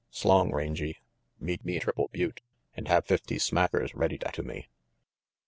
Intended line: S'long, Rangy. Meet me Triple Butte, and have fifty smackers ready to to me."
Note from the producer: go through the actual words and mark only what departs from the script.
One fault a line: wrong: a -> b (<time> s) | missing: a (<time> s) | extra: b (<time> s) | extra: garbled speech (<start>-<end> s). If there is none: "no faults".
no faults